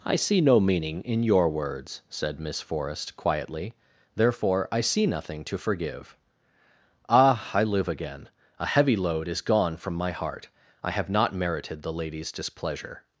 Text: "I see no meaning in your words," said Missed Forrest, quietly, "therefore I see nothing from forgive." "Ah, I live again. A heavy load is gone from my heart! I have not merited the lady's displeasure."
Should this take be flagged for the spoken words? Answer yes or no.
yes